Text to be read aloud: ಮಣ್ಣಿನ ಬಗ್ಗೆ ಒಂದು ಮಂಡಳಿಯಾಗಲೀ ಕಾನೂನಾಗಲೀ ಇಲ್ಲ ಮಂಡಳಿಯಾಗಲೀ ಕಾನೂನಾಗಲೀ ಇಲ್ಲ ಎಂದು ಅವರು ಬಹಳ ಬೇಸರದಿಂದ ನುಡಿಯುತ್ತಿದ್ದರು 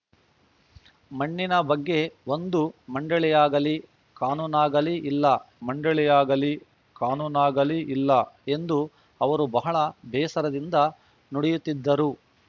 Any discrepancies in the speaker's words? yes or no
no